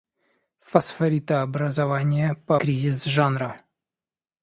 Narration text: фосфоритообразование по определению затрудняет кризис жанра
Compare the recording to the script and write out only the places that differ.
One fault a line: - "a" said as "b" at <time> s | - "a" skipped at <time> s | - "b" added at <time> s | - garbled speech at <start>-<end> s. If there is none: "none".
- "определению затрудняет" skipped at 2.6 s